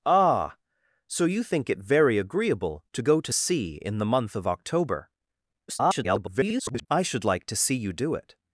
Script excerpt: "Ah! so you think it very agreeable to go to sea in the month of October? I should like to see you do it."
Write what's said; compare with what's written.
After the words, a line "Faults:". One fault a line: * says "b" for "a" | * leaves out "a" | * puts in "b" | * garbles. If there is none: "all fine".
"Ah! so you think it very agreeable to go to sea in the month of October? [garbled] I should like to see you do it."
Faults:
* garbles